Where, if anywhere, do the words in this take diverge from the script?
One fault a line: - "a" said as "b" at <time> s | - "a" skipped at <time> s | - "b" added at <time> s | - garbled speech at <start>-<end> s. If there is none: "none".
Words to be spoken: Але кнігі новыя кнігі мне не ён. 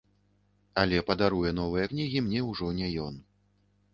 - "кнігі" said as "падаруе" at 1.1 s
- "ўжо" added at 2.5 s